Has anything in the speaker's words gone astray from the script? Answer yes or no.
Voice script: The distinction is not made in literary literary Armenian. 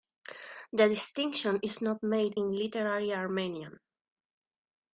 yes